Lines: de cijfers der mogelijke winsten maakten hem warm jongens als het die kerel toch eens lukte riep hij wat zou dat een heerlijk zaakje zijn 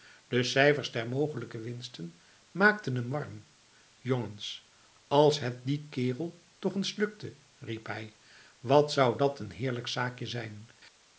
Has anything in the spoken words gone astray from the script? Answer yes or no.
no